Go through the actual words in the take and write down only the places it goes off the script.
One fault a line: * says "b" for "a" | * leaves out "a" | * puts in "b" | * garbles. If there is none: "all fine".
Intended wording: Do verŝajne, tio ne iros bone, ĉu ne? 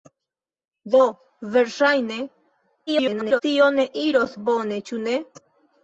* garbles